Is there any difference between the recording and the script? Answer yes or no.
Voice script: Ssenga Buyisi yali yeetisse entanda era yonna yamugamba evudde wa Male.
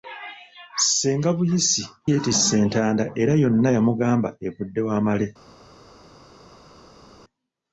yes